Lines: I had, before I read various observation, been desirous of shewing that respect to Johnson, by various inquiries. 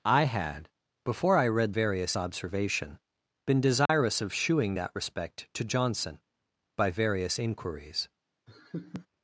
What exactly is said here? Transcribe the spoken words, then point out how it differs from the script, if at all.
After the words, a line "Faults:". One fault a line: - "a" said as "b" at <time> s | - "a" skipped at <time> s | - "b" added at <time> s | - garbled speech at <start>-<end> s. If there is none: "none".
I had, before I read various observation, been desirous of shewing that respect to Johnson, by various inquiries.
Faults:
none